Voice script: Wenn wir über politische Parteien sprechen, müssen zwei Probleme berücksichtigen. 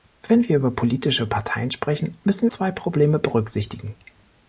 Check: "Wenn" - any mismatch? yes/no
no